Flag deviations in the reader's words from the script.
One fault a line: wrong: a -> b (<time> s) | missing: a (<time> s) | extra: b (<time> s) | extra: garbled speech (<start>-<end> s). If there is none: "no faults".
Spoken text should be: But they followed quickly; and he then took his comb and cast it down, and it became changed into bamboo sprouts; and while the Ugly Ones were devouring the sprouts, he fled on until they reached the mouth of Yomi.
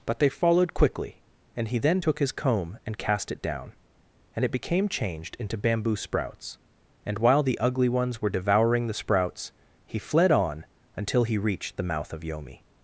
wrong: they -> he (11.2 s)